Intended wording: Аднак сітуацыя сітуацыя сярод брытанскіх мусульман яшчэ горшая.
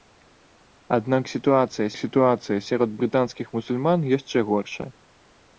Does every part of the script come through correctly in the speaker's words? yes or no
yes